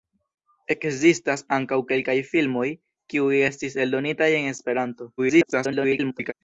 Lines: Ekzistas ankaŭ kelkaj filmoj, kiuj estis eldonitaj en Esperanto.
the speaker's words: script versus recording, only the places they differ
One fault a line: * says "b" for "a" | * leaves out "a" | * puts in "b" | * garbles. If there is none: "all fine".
* garbles